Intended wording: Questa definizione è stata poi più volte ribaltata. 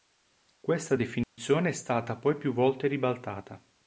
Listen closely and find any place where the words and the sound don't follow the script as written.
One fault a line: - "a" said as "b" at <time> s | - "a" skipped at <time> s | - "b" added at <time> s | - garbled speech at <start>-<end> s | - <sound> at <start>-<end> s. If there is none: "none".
- dropout at 1.2-1.4 s